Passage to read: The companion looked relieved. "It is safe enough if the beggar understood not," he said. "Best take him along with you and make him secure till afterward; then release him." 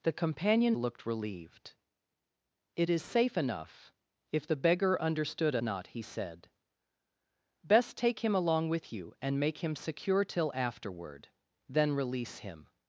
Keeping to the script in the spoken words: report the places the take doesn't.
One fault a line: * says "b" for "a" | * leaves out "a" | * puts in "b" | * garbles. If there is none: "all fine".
all fine